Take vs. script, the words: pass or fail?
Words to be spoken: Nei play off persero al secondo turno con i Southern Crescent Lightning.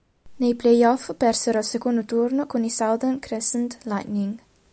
pass